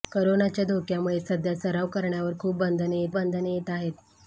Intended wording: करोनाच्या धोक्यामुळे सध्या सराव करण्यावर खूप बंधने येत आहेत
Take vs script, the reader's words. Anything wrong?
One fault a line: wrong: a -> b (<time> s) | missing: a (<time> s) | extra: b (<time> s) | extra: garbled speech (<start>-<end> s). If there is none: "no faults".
extra: बंधने येत (3.1 s)